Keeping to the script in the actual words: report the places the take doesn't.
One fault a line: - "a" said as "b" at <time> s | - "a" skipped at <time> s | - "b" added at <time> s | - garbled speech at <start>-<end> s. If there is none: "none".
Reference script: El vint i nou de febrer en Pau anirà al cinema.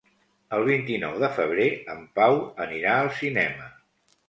none